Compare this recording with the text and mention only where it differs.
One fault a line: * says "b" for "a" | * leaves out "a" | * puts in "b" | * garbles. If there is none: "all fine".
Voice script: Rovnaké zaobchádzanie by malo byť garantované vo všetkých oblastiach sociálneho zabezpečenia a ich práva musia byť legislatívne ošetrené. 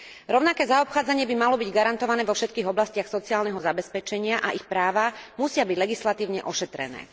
all fine